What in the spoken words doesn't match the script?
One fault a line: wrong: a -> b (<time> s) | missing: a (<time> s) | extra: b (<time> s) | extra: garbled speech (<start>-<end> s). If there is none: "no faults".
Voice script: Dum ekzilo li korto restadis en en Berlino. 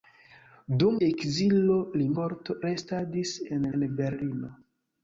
no faults